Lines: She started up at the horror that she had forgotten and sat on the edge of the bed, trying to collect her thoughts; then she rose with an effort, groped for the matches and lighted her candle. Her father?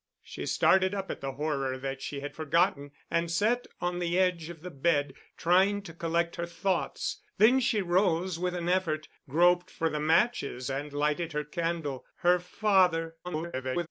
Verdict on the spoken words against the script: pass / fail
fail